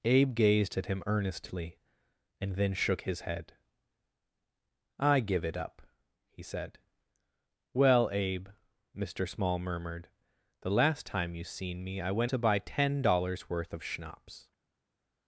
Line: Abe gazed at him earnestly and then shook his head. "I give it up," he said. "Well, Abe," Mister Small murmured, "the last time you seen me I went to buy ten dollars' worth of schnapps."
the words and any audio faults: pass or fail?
pass